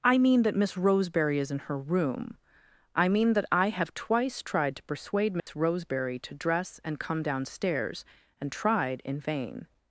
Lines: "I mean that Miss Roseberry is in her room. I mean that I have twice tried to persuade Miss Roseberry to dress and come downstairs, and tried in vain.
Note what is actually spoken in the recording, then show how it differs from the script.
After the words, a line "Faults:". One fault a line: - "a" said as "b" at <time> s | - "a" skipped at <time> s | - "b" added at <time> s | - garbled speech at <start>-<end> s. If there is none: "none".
"I mean that Miss Roseberry is in her room. I mean that I have twice tried to persuade Miss Roseberry to dress and come downstairs, and tried in vain.
Faults:
none